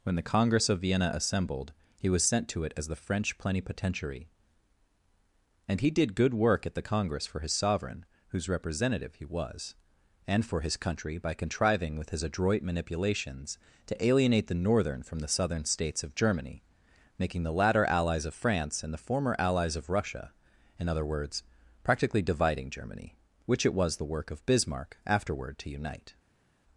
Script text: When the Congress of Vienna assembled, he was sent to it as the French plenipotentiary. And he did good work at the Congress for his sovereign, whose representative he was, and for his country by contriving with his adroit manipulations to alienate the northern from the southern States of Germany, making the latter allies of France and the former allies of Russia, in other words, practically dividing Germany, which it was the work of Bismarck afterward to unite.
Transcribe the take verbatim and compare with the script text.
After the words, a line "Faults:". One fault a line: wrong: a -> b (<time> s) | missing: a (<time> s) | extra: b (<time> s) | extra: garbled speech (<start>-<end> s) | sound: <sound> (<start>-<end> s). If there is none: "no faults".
When the Congress of Vienna assembled, he was sent to it as the French plenipotentiary. And he did good work at the Congress for his sovereign, whose representative he was, and for his country by contriving with his adroit manipulations to alienate the northern from the southern States of Germany, making the latter allies of France and the former allies of Russia, in other words, practically dividing Germany, which it was the work of Bismarck afterward to unite.
Faults:
no faults